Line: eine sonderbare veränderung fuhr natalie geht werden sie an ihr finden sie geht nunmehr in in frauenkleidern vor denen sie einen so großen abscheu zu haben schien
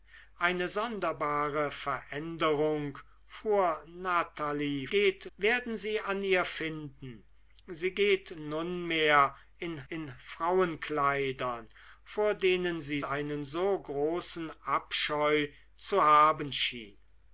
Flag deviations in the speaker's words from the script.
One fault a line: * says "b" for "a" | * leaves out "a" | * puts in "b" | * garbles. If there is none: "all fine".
all fine